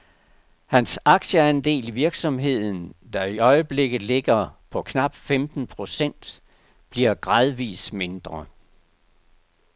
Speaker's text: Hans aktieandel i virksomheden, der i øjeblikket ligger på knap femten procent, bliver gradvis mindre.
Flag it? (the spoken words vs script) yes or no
no